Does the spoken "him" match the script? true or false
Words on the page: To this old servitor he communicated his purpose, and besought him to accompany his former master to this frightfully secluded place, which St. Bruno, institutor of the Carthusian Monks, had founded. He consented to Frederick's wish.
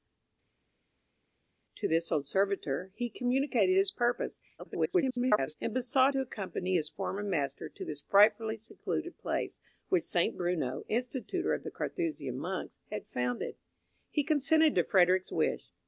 false